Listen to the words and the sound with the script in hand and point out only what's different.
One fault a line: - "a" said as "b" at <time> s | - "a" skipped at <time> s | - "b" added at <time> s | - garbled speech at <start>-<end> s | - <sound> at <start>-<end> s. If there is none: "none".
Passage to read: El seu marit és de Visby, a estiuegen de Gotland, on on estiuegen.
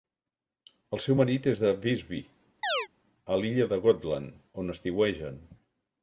- chirp at 2.6-2.9 s
- "estiuegen" said as "l'illa" at 3.4 s
- "on" skipped at 4.8 s